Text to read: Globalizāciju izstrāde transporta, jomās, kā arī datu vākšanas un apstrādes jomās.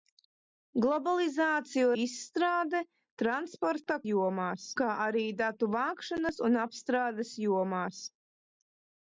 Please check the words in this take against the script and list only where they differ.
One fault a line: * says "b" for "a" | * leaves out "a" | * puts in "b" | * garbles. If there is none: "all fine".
all fine